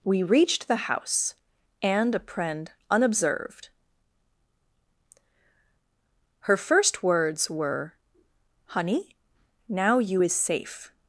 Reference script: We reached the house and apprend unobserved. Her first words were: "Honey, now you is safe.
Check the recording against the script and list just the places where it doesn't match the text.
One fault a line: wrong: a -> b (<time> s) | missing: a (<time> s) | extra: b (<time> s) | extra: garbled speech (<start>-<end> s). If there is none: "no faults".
no faults